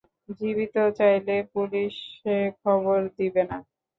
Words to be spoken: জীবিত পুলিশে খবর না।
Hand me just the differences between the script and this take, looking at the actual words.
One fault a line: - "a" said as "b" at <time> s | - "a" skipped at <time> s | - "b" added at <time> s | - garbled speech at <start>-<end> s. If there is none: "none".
- "চাইলে" added at 1.0 s
- "দিবে" added at 3.2 s